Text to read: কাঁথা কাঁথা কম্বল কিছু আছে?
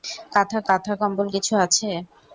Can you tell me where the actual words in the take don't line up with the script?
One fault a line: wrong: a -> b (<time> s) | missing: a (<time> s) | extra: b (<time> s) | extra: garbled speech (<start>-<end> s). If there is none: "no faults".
no faults